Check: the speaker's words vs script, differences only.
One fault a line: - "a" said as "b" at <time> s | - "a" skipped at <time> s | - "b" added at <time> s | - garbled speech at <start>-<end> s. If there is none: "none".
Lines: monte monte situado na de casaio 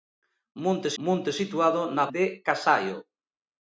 none